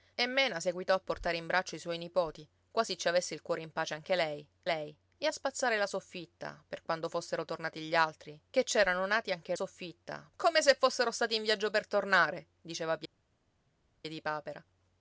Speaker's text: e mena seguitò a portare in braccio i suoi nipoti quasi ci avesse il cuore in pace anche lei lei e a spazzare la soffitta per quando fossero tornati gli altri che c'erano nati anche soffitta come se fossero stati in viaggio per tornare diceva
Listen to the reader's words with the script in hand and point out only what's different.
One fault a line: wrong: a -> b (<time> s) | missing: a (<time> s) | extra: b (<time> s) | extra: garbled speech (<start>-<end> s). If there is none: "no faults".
no faults